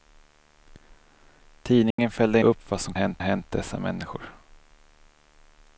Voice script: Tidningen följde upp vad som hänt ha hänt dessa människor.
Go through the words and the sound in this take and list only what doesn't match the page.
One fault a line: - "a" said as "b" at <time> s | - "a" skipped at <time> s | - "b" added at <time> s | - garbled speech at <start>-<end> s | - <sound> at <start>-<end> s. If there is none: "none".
- dropout at 1.9-2.0 s